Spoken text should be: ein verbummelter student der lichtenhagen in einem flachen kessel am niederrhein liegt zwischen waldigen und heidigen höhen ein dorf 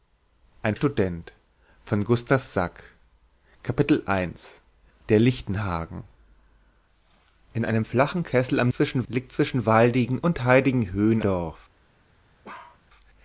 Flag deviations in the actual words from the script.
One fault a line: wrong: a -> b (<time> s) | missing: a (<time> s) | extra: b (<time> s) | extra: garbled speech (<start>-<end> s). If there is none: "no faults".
missing: verbummelter (0.8 s)
wrong: niederrhein -> zwischen (8.7 s)
missing: ein (11.2 s)